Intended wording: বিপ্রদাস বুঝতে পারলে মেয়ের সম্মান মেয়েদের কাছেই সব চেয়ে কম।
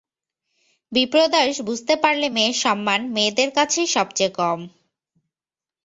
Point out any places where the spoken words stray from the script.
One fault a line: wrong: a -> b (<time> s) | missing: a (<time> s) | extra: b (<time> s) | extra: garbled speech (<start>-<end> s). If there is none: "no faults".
no faults